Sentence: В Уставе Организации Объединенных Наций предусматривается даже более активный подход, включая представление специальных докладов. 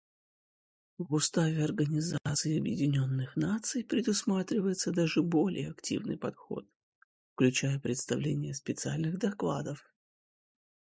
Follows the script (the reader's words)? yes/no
yes